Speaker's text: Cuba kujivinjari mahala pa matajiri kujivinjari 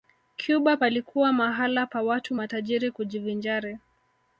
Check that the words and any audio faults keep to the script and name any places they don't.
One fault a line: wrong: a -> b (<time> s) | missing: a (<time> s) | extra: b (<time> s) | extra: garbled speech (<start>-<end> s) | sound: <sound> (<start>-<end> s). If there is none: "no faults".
wrong: kujivinjari -> palikuwa (0.7 s)
extra: watu (2.0 s)